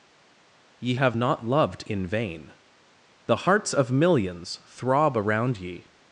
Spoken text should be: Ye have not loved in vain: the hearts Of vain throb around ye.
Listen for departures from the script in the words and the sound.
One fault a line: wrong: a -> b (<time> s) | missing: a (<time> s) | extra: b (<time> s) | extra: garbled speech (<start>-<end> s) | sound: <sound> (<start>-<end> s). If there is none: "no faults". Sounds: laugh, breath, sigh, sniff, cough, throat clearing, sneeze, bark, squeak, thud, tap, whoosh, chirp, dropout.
wrong: vain -> millions (3.9 s)